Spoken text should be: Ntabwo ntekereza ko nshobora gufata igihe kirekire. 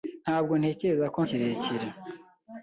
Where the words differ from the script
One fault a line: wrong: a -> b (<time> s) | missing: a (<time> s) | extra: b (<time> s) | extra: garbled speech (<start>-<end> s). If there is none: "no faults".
missing: nshobora gufata igihe (1.2 s)